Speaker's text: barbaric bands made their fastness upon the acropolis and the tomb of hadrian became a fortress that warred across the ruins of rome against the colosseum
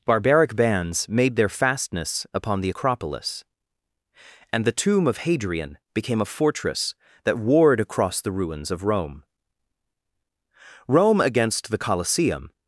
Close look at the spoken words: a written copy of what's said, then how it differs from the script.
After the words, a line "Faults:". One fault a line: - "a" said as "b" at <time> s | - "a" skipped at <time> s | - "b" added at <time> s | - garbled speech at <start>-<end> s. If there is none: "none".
barbaric bands made their fastness upon the acropolis and the tomb of hadrian became a fortress that warred across the ruins of rome rome against the colosseum
Faults:
- "rome" added at 10.9 s